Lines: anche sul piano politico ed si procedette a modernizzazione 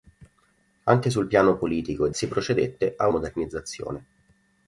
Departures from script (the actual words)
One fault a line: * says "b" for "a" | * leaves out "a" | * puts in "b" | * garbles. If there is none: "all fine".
all fine